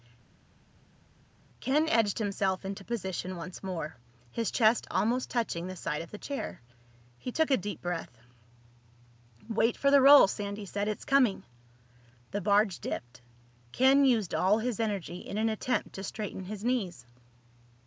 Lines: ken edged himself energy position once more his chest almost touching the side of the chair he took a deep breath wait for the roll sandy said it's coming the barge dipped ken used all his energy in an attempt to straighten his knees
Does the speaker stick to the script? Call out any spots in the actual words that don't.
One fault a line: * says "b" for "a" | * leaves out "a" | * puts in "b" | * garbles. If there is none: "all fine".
* says "into" for "energy"